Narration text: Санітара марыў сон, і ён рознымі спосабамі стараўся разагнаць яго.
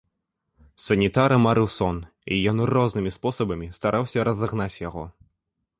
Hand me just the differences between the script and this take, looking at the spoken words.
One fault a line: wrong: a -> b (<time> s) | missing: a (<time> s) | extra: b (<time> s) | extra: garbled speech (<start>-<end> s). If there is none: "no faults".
no faults